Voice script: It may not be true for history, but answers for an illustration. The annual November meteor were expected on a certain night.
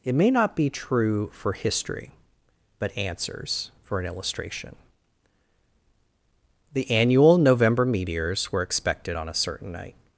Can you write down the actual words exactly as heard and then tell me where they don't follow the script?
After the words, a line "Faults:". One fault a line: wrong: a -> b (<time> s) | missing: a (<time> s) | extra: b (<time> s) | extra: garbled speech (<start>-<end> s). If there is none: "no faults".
It may not be true for history, but answers for an illustration. The annual November meteors were expected on a certain night.
Faults:
wrong: meteor -> meteors (7.8 s)